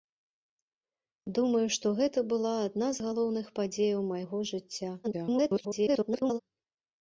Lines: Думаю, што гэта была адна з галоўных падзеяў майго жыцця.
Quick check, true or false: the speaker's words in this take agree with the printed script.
false